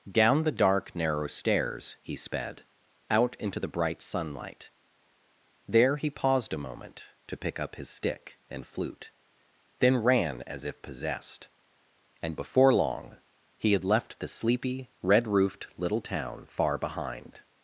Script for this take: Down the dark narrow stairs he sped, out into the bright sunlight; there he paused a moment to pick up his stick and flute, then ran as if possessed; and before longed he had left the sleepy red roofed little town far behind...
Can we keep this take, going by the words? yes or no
no